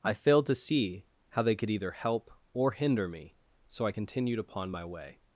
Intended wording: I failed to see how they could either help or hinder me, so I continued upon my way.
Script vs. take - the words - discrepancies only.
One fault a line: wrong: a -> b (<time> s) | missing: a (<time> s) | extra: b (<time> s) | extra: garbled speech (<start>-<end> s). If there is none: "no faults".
no faults